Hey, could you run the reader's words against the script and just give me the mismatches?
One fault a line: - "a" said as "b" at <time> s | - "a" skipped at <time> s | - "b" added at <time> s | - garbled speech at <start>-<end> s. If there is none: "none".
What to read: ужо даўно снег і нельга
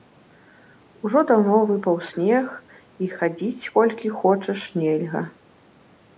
- "выпаў" added at 1.7 s
- "хадзіць колькі хочаш" added at 3.2 s